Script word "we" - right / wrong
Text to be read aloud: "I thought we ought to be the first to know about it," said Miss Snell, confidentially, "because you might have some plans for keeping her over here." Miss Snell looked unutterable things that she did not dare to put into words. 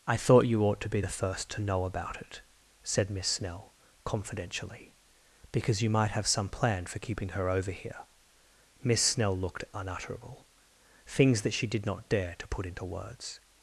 wrong